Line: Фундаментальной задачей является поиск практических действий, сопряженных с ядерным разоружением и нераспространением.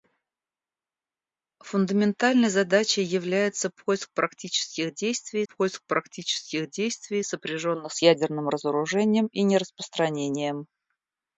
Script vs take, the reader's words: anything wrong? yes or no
yes